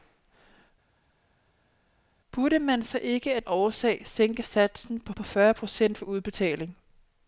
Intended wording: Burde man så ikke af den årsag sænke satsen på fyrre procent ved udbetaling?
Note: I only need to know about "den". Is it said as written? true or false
false